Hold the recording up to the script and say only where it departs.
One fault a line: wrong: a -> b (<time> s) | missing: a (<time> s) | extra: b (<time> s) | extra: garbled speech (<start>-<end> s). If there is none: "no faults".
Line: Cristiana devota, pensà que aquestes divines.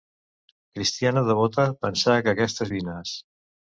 no faults